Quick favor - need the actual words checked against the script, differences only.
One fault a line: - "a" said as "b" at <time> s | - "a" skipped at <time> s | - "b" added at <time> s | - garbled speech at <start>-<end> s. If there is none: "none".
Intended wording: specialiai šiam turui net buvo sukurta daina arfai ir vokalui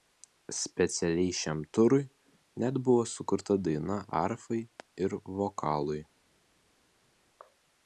none